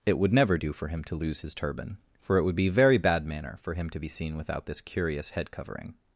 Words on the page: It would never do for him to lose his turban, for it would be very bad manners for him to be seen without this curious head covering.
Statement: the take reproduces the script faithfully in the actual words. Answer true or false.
false